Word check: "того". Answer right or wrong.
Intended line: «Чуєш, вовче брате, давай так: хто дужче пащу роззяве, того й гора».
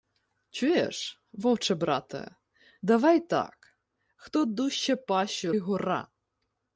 wrong